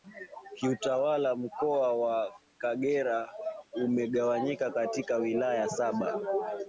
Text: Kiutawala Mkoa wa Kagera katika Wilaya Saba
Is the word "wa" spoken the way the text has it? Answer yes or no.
yes